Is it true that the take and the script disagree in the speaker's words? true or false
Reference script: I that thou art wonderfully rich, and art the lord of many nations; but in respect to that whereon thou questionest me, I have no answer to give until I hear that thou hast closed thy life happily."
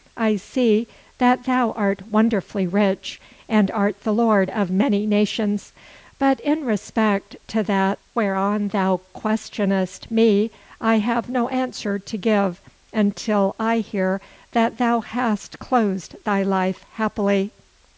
true